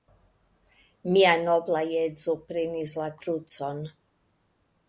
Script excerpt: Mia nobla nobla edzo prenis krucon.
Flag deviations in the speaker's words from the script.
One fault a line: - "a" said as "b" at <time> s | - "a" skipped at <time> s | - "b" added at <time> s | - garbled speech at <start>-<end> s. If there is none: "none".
- "nobla" skipped at 1.8 s
- "la" added at 3.0 s